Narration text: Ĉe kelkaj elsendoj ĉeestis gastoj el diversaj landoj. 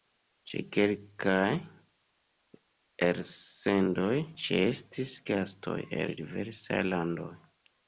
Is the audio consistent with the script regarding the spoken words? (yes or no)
yes